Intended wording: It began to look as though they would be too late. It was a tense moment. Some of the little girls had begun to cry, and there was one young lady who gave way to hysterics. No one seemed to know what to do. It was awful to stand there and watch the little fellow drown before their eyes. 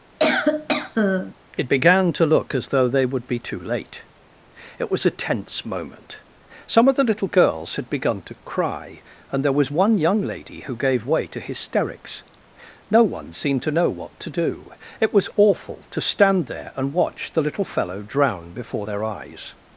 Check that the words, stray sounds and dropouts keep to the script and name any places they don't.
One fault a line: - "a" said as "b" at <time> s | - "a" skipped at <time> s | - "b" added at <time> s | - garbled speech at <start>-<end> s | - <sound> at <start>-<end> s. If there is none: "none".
- cough at 0.2-1.3 s